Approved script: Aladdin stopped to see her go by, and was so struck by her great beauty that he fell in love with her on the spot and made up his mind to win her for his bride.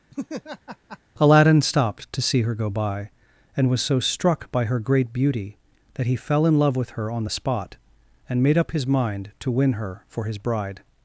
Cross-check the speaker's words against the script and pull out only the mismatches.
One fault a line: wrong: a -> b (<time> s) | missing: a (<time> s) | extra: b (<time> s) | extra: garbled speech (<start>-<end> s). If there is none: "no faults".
no faults